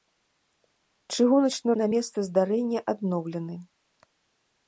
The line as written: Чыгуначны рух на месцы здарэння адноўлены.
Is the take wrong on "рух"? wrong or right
wrong